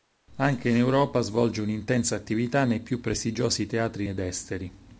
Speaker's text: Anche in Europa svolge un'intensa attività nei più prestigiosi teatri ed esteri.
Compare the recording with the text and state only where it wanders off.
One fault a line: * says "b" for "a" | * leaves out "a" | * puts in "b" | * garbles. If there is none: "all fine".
all fine